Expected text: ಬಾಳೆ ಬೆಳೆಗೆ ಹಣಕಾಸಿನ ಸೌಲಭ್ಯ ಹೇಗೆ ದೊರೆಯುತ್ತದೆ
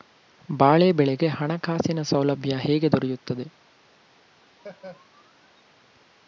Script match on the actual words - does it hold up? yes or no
yes